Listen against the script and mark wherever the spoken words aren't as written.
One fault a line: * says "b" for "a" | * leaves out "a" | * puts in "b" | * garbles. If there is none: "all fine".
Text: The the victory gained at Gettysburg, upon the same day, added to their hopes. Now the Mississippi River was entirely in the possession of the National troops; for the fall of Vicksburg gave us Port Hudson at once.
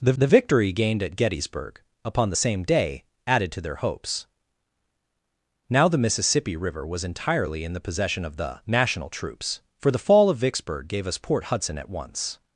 all fine